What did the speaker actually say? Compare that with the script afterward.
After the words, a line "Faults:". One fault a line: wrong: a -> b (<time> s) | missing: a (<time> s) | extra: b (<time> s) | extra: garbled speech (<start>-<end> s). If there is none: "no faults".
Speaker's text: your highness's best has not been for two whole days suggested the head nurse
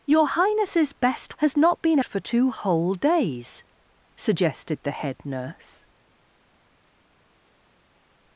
your highness's best has not been for two whole days suggested the head nurse
Faults:
no faults